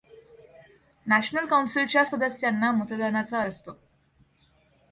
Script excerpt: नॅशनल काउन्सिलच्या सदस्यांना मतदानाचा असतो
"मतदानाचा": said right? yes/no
yes